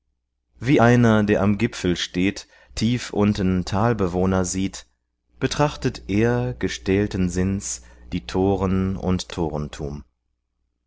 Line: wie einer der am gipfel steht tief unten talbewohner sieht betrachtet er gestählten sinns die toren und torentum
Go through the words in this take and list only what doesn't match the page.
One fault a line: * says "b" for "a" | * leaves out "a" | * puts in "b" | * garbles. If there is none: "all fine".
all fine